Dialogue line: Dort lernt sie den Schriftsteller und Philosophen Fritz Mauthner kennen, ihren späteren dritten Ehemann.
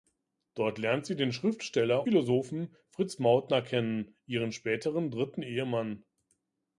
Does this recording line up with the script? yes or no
no